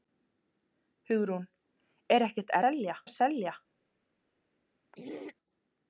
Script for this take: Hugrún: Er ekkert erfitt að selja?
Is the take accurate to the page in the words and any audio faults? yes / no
no